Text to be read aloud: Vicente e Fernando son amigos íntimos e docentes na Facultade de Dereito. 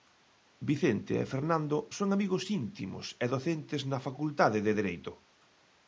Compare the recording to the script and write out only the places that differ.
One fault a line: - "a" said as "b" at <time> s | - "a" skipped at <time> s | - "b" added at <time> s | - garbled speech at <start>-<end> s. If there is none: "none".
none